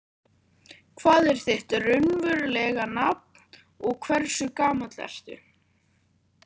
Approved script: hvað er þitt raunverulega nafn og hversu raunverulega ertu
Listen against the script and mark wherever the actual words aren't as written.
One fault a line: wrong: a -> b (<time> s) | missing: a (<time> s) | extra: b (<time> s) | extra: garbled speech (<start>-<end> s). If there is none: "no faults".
wrong: raunverulega -> gamall (4.6 s)